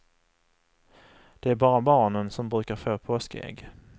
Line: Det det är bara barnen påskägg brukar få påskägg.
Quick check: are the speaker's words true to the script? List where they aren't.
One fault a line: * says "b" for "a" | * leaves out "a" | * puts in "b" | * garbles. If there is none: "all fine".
* leaves out "det"
* says "som" for "påskägg"